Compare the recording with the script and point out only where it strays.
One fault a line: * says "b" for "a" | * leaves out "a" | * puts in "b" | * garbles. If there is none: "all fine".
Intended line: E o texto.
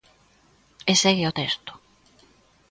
* puts in "segue"